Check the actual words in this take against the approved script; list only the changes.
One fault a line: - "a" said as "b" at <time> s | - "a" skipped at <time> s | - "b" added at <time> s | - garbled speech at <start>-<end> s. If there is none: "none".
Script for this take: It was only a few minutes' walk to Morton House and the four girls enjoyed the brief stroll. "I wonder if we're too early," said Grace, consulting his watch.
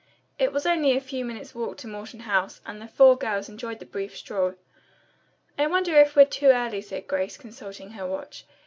- "his" said as "her" at 7.9 s